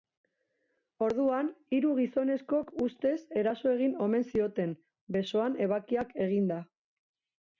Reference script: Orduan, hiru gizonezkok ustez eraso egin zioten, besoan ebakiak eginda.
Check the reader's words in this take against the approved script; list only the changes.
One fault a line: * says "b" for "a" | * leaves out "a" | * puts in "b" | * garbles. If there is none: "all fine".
* puts in "omen"